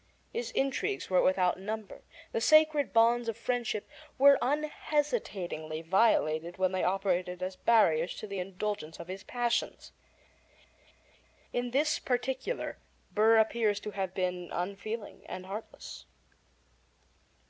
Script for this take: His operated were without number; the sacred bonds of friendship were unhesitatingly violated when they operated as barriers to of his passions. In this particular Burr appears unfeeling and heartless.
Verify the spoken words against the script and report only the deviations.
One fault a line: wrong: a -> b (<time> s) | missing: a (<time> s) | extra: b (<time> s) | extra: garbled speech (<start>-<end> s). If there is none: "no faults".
wrong: operated -> intrigues (0.5 s)
extra: the indulgence (8.2 s)
extra: to have been (13.8 s)